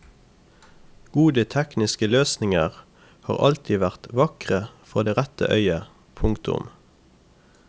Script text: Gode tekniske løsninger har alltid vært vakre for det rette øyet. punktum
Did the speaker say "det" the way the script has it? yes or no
yes